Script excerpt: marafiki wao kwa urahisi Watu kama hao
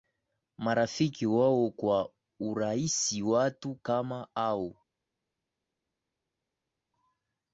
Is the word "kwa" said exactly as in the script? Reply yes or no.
yes